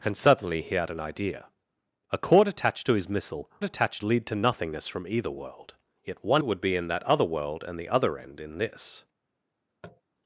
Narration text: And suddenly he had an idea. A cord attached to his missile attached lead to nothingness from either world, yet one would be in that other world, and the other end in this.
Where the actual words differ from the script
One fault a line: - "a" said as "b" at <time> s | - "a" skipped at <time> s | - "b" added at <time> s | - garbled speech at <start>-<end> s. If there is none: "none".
none